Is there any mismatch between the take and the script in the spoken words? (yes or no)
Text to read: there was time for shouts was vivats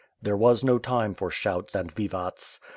yes